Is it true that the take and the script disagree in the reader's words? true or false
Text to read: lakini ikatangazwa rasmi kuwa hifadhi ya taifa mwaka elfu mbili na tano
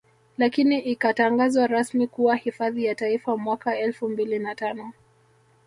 false